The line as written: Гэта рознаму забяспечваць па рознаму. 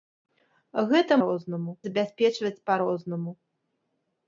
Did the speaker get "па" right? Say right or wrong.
right